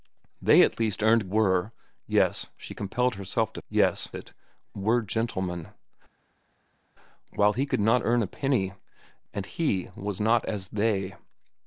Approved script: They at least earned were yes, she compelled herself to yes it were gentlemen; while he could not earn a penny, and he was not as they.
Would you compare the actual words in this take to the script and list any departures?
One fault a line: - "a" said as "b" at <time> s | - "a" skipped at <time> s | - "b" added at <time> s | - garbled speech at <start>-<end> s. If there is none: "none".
none